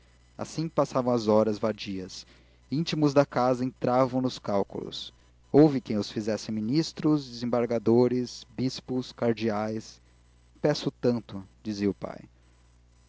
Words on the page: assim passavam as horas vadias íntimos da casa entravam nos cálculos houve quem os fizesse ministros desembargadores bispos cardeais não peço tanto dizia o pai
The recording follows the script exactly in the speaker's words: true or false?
false